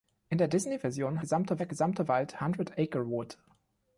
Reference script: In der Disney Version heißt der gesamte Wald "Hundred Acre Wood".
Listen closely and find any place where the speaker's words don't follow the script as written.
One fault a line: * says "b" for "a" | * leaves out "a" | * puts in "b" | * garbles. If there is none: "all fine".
* says "gesamte" for "heißt"